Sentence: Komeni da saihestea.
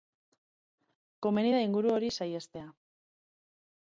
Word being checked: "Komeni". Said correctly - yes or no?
yes